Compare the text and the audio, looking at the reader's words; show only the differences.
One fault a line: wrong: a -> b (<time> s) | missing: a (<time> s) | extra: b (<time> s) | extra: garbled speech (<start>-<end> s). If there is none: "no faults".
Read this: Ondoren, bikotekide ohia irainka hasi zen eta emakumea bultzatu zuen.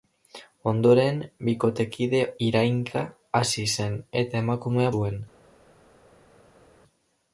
missing: ohia (2.2 s)
missing: bultzatu (5.0 s)